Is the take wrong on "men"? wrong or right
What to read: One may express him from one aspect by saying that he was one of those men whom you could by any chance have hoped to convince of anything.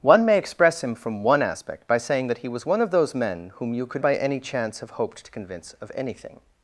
right